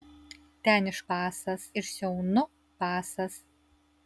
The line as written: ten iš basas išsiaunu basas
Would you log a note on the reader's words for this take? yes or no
no